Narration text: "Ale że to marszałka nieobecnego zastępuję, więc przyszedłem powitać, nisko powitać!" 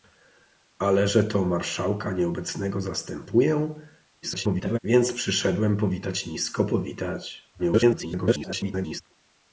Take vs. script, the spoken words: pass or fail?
fail